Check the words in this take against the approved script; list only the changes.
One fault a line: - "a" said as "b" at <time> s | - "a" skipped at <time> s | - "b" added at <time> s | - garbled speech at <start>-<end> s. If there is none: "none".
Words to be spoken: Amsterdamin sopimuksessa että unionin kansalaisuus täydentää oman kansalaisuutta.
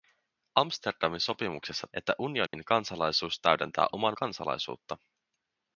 none